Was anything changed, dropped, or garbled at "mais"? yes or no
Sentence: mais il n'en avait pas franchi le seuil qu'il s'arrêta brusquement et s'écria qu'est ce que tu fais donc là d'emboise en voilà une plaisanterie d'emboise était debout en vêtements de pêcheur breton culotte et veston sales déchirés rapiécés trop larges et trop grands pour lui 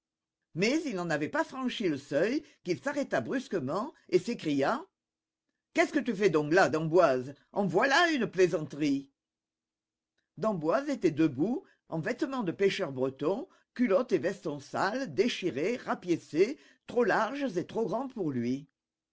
no